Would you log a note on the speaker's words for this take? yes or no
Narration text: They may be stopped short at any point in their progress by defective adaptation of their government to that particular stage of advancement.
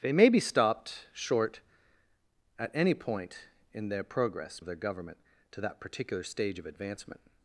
yes